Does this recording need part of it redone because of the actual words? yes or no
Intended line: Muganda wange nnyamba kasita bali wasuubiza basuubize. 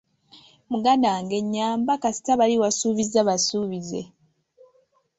no